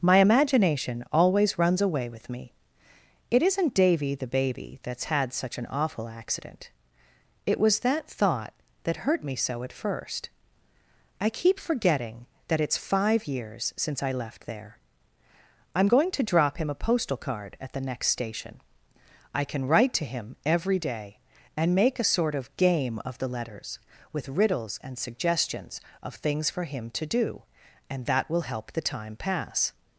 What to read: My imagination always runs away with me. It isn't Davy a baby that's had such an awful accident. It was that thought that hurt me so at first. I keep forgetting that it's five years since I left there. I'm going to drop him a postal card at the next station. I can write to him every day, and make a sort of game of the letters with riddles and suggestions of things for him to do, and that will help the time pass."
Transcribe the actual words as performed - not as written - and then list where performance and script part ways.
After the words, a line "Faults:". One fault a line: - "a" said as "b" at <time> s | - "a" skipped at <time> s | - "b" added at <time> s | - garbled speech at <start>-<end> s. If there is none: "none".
My imagination always runs away with me. It isn't Davy the baby that's had such an awful accident. It was that thought that hurt me so at first. I keep forgetting that it's five years since I left there. I'm going to drop him a postal card at the next station. I can write to him every day, and make a sort of game of the letters with riddles and suggestions of things for him to do, and that will help the time pass."
Faults:
- "a" said as "the" at 4.2 s